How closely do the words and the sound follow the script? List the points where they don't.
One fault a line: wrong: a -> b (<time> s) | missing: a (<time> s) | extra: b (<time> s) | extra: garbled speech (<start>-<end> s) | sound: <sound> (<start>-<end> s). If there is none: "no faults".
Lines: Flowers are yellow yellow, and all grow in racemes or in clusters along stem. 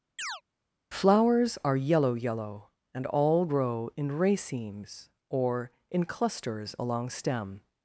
sound: chirp (0.2-0.4 s)